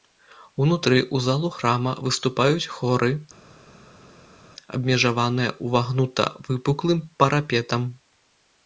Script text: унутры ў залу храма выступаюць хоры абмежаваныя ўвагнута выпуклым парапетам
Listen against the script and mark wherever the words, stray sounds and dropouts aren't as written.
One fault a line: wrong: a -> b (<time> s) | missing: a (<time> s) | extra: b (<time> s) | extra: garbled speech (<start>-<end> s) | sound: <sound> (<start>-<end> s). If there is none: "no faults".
no faults